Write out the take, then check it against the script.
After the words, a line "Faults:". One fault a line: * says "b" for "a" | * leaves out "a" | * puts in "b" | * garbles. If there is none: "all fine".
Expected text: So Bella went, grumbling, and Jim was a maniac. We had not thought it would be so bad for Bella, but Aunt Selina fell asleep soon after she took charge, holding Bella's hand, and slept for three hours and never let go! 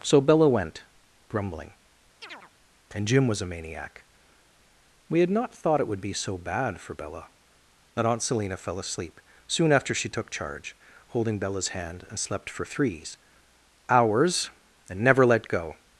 So Bella went, grumbling, and Jim was a maniac. We had not thought it would be so bad for Bella, but Aunt Selina fell asleep soon after she took charge, holding Bella's hand, and slept for threes hours and never let go!
Faults:
* says "threes" for "three"